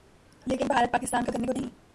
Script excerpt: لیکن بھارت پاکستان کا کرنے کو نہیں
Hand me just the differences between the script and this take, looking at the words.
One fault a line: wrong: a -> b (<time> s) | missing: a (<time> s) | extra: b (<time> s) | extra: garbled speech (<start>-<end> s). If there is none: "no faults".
no faults